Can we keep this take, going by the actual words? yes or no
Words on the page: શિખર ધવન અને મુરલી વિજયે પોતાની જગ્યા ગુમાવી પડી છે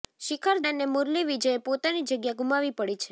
no